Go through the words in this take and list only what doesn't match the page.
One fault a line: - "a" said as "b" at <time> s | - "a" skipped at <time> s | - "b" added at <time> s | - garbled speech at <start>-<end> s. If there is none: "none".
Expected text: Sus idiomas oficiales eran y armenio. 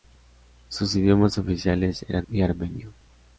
none